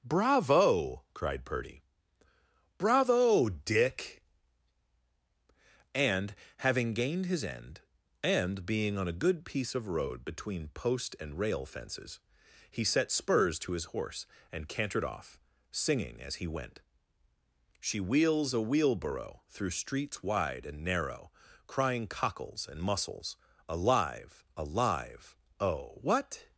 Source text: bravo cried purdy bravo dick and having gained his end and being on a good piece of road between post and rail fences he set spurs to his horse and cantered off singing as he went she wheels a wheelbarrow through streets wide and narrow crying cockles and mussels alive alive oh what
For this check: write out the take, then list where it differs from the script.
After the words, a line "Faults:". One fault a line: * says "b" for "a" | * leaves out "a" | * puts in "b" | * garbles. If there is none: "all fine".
bravo cried purdy bravo dick and having gained his end and being on a good piece of road between post and rail fences he set spurs to his horse and cantered off singing as he went she wheels a wheelbarrow through streets wide and narrow crying cockles and mussels alive alive oh what
Faults:
all fine